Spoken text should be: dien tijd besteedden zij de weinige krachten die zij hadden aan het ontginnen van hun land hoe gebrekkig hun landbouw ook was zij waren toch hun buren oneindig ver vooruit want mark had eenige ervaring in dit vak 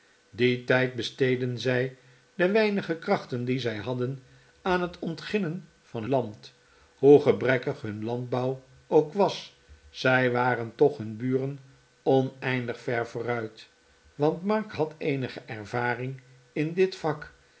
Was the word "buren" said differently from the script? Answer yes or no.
no